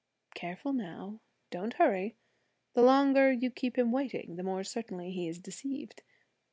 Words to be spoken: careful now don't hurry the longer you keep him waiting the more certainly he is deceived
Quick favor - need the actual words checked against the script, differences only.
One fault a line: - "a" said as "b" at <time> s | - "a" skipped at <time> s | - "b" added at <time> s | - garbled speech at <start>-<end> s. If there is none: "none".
none